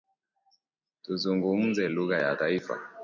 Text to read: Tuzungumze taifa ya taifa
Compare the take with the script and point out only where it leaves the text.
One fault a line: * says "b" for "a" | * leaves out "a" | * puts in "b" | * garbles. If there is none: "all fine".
* says "lugha" for "taifa"